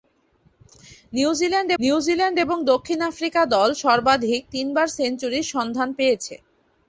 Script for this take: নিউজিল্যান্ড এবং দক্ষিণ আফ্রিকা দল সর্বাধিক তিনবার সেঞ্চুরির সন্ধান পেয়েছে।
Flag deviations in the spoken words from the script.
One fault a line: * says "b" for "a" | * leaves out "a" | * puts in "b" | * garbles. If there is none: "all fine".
* puts in "নিউজিল্যান্ড"